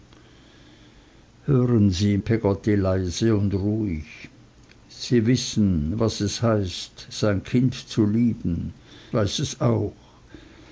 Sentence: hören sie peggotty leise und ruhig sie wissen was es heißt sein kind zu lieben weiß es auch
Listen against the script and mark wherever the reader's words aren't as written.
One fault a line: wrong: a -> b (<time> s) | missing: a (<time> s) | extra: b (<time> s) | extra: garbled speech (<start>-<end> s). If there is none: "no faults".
no faults